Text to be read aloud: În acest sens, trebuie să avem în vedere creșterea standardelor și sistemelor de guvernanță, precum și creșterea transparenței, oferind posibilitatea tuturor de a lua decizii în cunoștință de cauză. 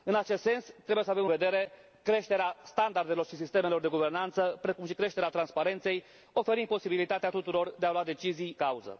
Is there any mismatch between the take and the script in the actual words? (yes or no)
yes